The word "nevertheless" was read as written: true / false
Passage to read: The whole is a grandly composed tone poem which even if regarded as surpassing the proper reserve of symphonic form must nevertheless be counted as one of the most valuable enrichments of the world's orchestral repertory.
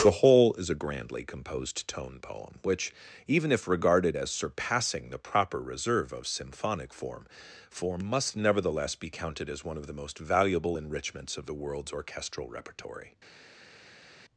true